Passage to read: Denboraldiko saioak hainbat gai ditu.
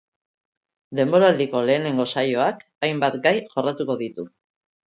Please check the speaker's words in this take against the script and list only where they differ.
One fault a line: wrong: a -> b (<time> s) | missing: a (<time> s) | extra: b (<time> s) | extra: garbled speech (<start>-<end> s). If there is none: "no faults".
extra: lehenengo (1.7 s)
extra: jorratuko (3.5 s)